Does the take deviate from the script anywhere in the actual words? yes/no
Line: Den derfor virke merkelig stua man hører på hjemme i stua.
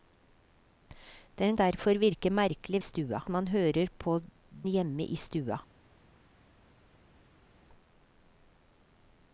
no